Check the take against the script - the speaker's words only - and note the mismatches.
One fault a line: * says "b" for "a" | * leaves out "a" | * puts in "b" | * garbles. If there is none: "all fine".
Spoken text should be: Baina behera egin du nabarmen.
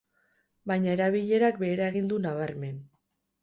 * puts in "erabilerak"